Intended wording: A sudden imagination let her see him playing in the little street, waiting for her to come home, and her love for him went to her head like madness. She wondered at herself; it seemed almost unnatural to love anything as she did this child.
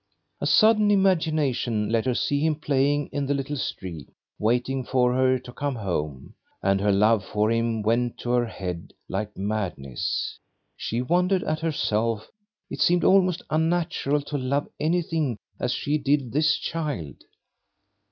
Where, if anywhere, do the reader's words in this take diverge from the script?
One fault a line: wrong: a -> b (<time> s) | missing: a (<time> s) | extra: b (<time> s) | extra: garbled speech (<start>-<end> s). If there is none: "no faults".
no faults